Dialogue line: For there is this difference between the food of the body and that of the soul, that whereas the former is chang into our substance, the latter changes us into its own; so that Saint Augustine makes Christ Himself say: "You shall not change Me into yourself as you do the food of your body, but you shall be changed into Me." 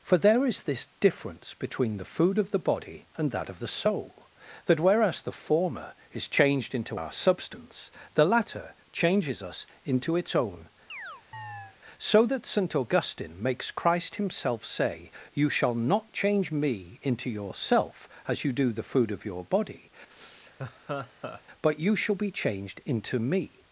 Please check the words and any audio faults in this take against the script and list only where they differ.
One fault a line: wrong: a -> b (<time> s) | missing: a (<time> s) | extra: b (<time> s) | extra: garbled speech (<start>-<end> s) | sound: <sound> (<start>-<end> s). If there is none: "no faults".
wrong: chang -> changed (6.3 s)
sound: chirp (10.9-11.8 s)
sound: laugh (20.1-21.4 s)